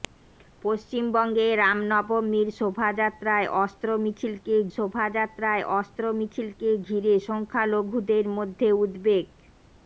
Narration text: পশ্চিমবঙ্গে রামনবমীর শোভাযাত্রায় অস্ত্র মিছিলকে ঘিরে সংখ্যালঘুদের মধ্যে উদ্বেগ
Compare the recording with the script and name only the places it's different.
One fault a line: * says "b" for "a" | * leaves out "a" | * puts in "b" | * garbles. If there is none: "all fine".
* puts in "শোভাযাত্রায় অস্ত্র মিছিলকে"